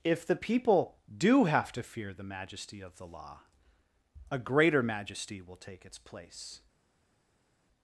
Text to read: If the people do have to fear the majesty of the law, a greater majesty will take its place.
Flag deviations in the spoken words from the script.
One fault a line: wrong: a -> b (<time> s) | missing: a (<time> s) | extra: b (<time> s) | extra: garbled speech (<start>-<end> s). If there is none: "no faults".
no faults